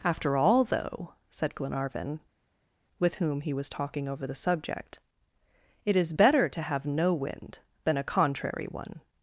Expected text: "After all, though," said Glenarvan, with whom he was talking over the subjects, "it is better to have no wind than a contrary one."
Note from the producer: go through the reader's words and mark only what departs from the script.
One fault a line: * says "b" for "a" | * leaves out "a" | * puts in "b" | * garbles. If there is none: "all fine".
* says "subject" for "subjects"